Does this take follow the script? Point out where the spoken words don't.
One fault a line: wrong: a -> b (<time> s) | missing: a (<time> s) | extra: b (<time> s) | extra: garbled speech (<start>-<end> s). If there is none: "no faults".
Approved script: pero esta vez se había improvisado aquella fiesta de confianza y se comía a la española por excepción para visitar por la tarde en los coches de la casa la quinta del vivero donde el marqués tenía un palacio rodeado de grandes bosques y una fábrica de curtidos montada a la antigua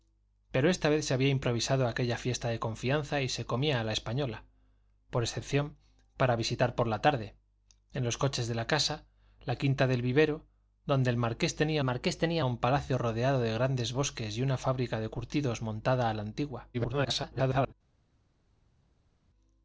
extra: marqués tenía (11.8 s)
extra: garbled speech (16.7-17.7 s)